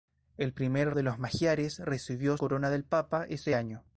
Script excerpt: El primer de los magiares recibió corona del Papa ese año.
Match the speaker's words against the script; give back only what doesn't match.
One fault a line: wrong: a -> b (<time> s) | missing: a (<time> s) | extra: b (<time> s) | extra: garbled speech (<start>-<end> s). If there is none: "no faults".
no faults